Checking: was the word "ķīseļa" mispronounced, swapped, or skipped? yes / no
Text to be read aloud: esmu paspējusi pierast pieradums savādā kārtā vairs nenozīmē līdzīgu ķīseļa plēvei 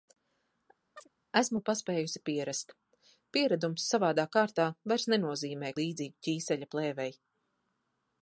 no